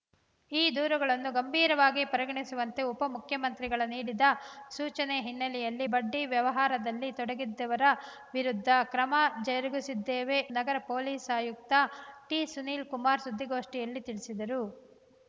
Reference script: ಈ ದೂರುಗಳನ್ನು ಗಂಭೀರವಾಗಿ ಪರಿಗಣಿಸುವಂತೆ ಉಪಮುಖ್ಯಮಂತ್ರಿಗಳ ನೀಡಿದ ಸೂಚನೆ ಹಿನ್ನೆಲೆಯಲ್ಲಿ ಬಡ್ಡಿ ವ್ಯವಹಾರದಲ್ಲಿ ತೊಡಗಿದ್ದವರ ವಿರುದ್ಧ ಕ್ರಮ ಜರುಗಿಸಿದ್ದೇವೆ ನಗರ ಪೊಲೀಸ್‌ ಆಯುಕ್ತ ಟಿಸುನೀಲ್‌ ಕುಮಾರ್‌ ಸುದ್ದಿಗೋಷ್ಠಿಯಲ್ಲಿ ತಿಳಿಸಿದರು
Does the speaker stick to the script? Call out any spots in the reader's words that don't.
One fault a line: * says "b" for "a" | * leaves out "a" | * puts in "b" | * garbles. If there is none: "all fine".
all fine